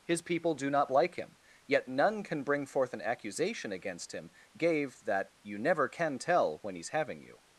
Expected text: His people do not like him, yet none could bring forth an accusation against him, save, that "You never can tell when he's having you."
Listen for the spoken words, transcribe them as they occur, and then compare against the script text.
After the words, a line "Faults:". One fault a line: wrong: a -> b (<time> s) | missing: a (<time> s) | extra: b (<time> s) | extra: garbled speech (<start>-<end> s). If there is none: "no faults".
His people do not like him, yet none can bring forth an accusation against him, gave, that "You never can tell when he's having you."
Faults:
wrong: could -> can (2.2 s)
wrong: save -> gave (4.6 s)